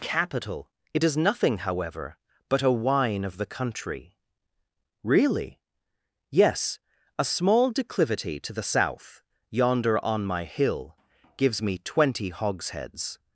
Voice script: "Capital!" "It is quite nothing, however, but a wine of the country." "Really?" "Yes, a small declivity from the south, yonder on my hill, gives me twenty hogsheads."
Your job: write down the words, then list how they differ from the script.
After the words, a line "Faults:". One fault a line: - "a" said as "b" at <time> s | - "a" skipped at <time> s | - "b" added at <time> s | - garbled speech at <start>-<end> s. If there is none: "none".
"Capital!" "It is nothing, however, but a wine of the country." "Really?" "Yes, a small declivity to the south, yonder on my hill, gives me twenty hogsheads."
Faults:
- "quite" skipped at 1.1 s
- "from" said as "to" at 8.4 s